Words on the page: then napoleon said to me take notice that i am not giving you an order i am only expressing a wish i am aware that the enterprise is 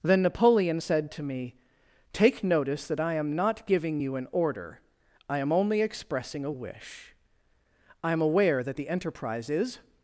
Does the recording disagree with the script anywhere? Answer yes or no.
no